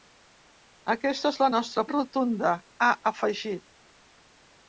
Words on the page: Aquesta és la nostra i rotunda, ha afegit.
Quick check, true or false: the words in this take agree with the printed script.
true